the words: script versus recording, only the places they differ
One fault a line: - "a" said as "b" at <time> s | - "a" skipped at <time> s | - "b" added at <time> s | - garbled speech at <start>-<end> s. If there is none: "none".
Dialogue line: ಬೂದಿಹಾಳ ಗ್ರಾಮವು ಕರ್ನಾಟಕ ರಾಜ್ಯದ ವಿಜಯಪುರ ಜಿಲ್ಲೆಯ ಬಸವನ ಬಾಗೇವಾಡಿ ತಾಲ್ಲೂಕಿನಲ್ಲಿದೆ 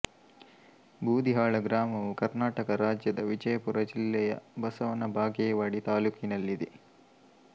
none